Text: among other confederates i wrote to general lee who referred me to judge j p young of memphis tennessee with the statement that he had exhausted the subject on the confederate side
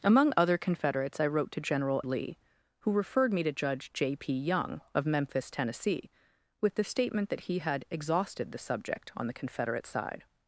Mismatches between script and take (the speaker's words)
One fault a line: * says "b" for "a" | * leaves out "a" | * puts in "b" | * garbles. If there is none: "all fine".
all fine